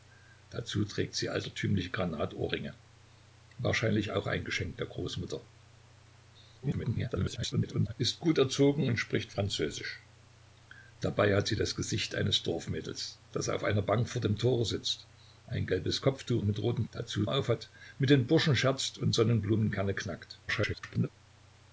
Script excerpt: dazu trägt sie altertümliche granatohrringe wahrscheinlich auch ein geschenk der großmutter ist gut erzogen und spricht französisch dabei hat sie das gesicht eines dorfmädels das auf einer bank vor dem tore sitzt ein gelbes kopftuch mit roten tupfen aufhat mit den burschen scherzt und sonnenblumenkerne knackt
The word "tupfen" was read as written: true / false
false